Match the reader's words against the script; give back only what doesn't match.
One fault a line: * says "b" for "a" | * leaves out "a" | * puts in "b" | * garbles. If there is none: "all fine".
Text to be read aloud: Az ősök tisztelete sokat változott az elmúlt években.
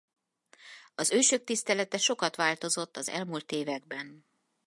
all fine